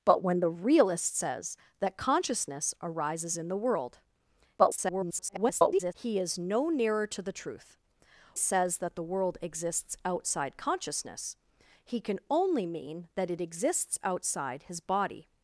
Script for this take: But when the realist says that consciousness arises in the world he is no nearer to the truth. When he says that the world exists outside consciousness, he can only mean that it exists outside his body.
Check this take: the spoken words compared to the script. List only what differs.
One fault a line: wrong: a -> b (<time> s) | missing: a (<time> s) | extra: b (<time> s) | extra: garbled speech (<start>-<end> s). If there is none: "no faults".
extra: garbled speech (4.6-5.9 s)
missing: When he (7.8 s)